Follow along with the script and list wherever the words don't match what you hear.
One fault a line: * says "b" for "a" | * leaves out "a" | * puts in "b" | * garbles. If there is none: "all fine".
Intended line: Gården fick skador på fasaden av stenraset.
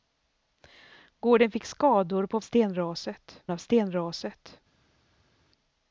* says "stenraset" for "fasaden"